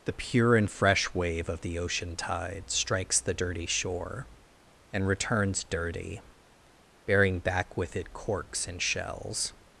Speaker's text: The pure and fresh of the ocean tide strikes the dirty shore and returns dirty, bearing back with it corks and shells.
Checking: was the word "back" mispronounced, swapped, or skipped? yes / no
no